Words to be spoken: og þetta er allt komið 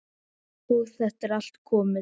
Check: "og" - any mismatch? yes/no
no